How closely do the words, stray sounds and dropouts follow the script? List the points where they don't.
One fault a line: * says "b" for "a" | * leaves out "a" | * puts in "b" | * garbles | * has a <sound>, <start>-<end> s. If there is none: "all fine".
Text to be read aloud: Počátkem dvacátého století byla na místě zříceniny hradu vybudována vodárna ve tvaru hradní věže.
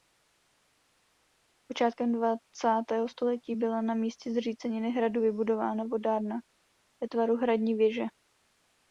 all fine